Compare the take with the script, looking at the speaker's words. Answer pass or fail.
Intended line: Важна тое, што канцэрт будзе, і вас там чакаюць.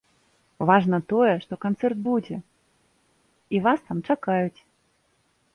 pass